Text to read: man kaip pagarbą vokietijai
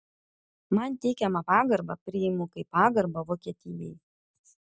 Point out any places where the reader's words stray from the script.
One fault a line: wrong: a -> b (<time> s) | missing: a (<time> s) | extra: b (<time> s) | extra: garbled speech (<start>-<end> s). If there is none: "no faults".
extra: teikiamą pagarbą priimu (1.0 s)